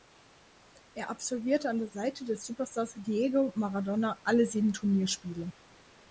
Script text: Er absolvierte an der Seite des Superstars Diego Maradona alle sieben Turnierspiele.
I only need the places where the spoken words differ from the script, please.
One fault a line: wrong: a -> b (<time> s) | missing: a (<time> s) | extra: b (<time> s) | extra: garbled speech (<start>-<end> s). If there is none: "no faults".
no faults